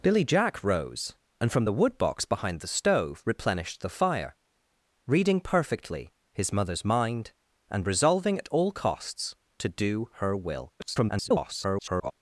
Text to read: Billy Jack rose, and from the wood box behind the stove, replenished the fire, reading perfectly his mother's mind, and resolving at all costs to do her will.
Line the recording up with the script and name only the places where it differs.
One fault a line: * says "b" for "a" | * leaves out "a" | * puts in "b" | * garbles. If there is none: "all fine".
* garbles